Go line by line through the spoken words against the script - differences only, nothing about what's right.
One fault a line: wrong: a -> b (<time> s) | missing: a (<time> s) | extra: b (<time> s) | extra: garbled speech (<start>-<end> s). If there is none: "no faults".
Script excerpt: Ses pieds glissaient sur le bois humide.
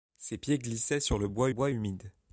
extra: bois (1.5 s)